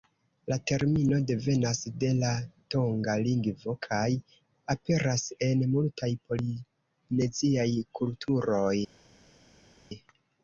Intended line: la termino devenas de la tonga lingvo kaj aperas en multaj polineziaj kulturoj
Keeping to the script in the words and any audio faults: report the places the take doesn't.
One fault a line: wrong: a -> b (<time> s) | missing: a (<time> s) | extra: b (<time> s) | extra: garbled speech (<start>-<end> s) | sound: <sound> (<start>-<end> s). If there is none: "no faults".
no faults